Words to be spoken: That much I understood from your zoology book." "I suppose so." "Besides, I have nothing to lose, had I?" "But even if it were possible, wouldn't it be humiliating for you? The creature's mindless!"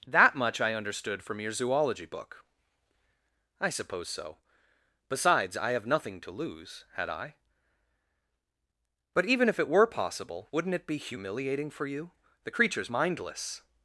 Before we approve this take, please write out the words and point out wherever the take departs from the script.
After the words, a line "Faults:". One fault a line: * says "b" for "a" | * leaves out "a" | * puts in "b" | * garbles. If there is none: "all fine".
That much I understood from your zoology book." "I suppose so." "Besides, I have nothing to lose, had I?" "But even if it were possible, wouldn't it be humiliating for you? The creature's mindless!"
Faults:
all fine